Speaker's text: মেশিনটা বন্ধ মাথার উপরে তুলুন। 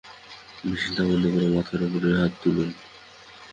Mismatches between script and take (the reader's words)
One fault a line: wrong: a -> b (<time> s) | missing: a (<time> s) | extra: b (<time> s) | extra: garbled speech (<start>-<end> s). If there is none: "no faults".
extra: করে (1.3 s)
extra: হাত (2.2 s)